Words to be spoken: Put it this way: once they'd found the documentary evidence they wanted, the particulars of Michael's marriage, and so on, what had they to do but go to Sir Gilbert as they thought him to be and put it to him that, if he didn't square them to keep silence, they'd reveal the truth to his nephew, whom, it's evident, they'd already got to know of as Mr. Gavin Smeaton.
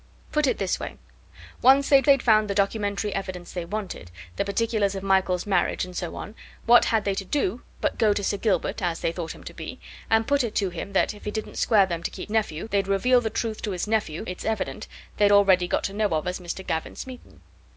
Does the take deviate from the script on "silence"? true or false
true